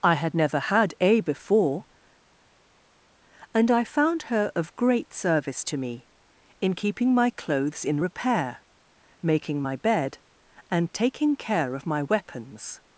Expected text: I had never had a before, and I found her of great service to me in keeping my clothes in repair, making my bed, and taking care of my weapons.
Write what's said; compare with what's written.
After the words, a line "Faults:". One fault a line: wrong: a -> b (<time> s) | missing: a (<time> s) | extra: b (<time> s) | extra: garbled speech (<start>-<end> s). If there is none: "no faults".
I had never had a before, and I found her of great service to me in keeping my clothes in repair, making my bed, and taking care of my weapons.
Faults:
no faults